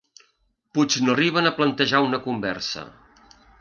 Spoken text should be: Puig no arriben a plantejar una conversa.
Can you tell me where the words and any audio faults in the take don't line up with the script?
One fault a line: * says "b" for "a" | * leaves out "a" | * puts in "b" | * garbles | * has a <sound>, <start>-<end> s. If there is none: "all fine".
all fine